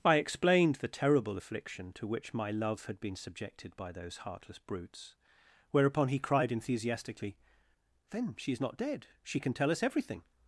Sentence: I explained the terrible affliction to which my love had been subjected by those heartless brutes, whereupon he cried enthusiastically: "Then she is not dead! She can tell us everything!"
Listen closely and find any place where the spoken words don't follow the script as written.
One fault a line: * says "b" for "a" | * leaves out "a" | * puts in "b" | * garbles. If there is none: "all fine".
all fine